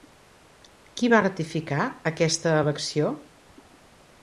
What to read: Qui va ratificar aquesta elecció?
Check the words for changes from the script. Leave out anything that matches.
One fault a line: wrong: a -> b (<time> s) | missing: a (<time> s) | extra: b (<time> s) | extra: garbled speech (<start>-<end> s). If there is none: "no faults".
no faults